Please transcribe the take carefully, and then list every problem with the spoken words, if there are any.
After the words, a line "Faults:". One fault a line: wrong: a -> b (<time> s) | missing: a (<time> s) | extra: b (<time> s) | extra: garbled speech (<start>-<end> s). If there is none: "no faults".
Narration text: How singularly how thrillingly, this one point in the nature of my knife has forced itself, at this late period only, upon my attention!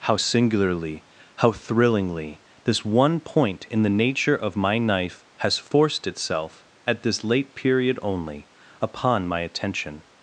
How singularly how thrillingly, this one point in the nature of my knife has forced itself, at this late period only, upon my attention!
Faults:
no faults